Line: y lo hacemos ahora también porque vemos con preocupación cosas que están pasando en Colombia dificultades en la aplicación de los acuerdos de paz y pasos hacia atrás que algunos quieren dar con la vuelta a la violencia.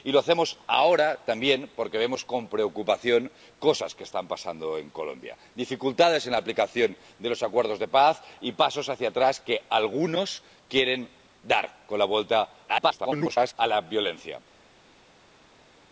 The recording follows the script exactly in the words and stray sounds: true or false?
false